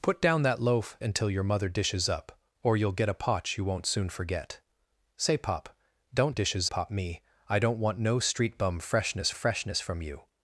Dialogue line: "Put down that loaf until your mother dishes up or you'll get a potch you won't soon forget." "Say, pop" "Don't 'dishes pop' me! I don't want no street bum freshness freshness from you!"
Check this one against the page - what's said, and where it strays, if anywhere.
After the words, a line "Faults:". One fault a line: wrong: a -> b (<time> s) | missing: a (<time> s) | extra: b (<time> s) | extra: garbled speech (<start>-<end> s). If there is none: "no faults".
"Put down that loaf until your mother dishes up or you'll get a potch you won't soon forget." "Say, pop" "Don't 'dishes pop' me! I don't want no street bum freshness freshness from you!"
Faults:
no faults